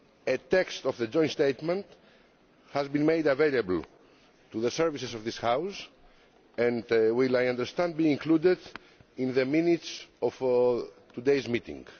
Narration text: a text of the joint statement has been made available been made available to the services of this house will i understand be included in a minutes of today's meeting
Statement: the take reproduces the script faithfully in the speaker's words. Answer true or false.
false